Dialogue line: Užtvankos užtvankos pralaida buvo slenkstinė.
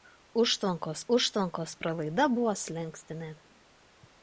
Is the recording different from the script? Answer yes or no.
no